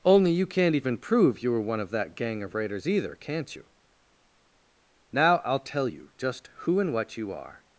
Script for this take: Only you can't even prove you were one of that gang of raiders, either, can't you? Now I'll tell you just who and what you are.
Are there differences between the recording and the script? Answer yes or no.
no